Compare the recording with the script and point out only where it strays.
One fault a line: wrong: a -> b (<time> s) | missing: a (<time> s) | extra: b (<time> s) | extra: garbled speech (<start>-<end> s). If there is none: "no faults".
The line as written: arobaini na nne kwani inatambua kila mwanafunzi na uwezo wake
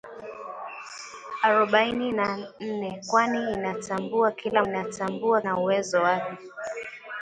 wrong: mwanafunzi -> inatambua (4.6 s)